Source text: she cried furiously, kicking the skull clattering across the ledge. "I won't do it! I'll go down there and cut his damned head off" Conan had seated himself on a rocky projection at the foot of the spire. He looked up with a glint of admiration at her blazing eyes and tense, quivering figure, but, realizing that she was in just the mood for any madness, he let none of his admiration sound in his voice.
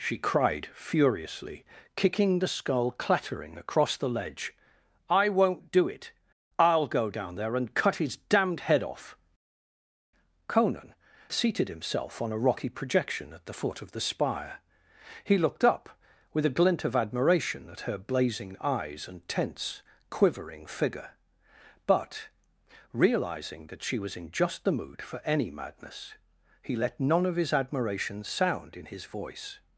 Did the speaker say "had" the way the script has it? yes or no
no